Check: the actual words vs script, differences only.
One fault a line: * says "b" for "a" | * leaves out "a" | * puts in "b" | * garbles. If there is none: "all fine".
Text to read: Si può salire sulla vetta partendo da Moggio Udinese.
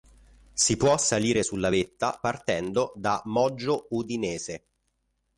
all fine